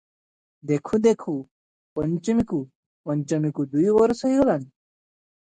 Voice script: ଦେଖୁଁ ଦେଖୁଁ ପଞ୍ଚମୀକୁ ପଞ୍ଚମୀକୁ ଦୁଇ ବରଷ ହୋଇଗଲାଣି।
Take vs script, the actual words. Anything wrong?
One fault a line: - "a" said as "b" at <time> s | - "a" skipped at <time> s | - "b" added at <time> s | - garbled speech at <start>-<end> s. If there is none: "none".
none